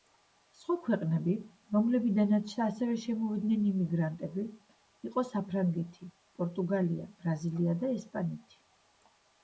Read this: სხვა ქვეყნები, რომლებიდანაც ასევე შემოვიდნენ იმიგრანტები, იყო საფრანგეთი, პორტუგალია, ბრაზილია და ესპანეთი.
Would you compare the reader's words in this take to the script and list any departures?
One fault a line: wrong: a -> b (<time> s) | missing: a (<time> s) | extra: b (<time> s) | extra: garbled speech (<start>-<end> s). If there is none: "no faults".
no faults